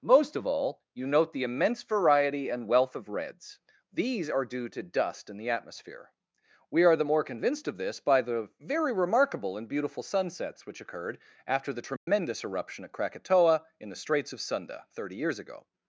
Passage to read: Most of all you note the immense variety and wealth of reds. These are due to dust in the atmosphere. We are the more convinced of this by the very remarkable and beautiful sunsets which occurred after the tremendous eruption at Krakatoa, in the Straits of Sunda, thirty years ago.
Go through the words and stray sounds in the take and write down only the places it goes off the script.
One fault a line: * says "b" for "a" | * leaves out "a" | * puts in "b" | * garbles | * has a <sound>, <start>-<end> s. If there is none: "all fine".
* has a dropout, 12.0-12.1 s